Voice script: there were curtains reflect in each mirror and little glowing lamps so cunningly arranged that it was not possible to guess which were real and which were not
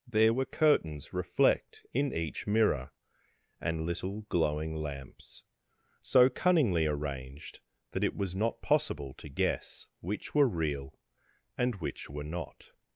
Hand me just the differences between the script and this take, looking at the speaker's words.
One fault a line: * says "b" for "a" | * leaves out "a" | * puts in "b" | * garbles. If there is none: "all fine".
all fine